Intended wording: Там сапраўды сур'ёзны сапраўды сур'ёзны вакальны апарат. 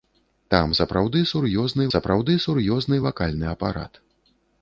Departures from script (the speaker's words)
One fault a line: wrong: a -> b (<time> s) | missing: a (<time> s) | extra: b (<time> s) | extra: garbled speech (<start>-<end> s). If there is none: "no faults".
no faults